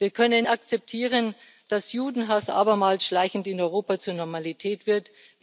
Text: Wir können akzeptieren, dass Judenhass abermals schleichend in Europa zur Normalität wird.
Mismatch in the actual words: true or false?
false